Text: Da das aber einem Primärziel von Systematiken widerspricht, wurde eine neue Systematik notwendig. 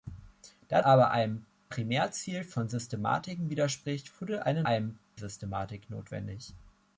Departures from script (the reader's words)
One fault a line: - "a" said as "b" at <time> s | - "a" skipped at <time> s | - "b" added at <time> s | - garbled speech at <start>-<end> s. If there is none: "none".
- "das" skipped at 0.8 s
- "neue" said as "einem" at 4.6 s